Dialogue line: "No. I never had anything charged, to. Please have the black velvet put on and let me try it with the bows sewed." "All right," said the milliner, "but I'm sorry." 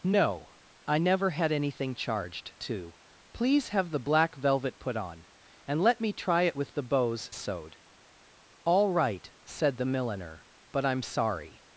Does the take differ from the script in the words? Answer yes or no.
no